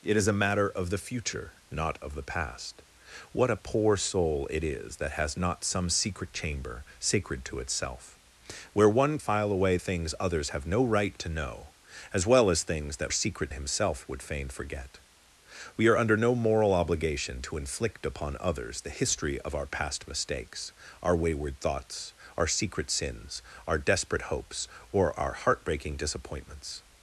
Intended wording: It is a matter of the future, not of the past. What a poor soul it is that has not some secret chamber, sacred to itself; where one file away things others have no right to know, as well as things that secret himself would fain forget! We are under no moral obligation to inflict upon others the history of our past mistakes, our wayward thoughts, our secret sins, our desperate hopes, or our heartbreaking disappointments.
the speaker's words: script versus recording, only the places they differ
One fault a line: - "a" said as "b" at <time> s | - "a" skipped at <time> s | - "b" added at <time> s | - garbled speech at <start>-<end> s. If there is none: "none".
none